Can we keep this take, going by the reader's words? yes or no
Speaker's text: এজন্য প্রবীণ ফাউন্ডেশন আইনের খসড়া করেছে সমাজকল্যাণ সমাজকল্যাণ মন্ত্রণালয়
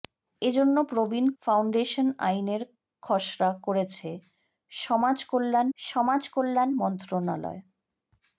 yes